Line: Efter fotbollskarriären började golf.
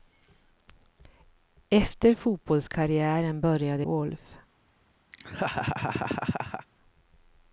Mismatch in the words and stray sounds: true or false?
true